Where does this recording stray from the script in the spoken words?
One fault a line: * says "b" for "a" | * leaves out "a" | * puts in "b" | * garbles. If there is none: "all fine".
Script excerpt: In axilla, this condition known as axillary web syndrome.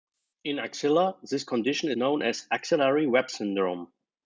all fine